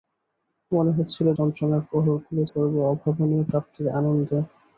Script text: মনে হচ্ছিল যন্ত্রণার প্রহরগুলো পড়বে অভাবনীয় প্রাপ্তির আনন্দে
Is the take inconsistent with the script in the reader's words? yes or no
no